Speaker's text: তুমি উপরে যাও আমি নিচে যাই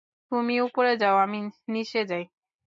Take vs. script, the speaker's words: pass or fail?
pass